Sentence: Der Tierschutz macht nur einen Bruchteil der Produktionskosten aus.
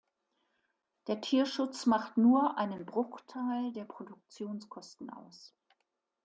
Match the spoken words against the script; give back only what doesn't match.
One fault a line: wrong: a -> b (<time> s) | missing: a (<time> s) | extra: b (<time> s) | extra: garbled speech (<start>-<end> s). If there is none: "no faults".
no faults